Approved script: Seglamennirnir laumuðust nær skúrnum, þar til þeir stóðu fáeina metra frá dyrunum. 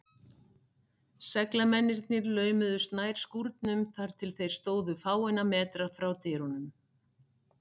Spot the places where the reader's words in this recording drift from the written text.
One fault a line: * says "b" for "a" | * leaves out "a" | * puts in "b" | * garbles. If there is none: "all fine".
all fine